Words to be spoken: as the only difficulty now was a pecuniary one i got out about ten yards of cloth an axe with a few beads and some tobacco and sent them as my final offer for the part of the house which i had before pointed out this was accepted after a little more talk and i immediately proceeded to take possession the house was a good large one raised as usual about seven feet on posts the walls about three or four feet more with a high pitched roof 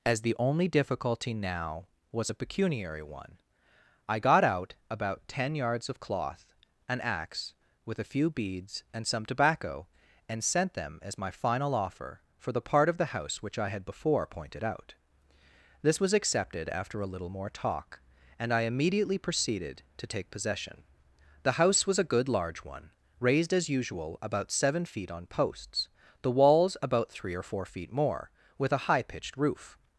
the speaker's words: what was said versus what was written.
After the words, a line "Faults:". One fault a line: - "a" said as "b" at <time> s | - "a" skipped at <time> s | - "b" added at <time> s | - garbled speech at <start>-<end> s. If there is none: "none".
as the only difficulty now was a pecuniary one i got out about ten yards of cloth an axe with a few beads and some tobacco and sent them as my final offer for the part of the house which i had before pointed out this was accepted after a little more talk and i immediately proceeded to take possession the house was a good large one raised as usual about seven feet on posts the walls about three or four feet more with a high pitched roof
Faults:
none